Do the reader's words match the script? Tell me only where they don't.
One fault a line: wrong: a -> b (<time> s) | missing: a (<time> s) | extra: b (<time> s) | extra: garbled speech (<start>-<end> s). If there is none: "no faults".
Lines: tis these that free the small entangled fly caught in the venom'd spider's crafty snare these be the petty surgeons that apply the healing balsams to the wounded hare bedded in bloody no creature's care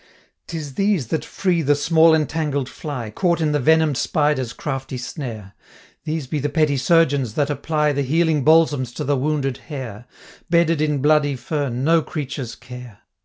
extra: fern (11.3 s)